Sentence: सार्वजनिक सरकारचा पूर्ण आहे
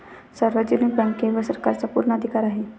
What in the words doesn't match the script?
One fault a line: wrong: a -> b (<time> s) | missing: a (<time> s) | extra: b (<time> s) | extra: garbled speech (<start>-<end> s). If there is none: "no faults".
extra: बँकेवर (0.9 s)
extra: अधिकार (2.1 s)